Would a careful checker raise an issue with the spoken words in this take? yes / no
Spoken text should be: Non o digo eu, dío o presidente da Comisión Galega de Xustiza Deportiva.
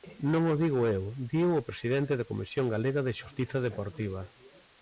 no